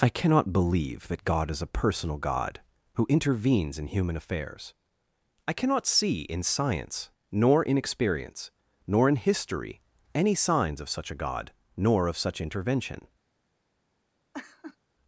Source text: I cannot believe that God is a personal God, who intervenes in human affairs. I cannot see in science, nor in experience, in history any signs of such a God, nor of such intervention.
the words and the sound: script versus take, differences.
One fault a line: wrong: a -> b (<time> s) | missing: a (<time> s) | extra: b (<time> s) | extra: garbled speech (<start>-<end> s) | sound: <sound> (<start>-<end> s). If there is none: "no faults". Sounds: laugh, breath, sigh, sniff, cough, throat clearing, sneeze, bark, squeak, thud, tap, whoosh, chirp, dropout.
extra: nor (8.9 s)
sound: laugh (14.3-14.8 s)